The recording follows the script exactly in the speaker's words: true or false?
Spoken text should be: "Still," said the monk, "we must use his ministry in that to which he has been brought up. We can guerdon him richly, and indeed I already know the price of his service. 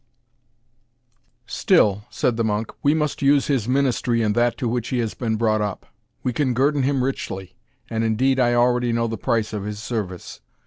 true